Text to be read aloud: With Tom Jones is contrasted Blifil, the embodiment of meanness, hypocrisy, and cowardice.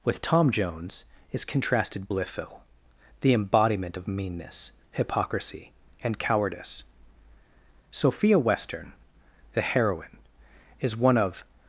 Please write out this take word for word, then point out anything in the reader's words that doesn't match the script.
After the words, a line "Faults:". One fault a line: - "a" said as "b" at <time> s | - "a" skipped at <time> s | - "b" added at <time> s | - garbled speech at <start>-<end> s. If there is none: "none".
With Tom Jones is contrasted Blifil, the embodiment of meanness, hypocrisy, and cowardice. Sophia Western, the heroine, is one of
Faults:
- "Sophia Western the heroine is one of" added at 7.9 s